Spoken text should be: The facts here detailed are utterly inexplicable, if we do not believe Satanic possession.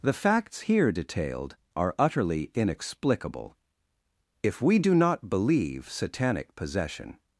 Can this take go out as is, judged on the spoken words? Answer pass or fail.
pass